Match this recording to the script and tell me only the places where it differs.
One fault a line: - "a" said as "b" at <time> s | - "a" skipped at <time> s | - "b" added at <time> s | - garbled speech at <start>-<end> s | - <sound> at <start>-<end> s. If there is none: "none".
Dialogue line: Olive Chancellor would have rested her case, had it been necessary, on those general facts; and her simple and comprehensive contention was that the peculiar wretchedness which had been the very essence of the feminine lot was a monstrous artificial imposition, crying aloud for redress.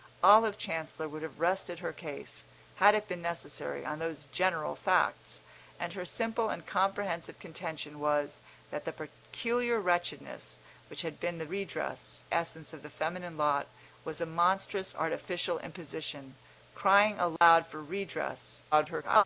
- "very" said as "redress" at 11.4 s
- dropout at 17.4-17.4 s
- garbled speech at 18.7-19.2 s